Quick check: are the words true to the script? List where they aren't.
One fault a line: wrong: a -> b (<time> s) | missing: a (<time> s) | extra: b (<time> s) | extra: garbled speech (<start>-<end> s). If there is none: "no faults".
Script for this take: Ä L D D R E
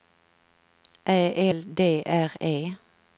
missing: D (2.0 s)